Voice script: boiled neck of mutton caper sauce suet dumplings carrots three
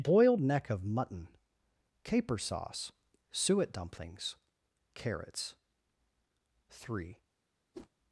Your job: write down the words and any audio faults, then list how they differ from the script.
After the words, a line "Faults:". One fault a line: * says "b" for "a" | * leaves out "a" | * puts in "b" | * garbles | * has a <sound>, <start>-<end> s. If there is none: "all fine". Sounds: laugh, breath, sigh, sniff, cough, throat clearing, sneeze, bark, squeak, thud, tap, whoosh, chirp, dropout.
boiled neck of mutton caper sauce suet dumplings carrots three
Faults:
* has a whoosh, 7.7-7.9 s